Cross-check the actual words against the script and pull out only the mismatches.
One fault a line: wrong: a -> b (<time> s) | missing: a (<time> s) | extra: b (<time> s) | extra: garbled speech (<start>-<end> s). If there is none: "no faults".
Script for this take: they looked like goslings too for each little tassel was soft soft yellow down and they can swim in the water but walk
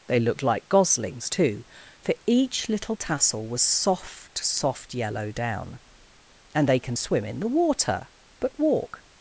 no faults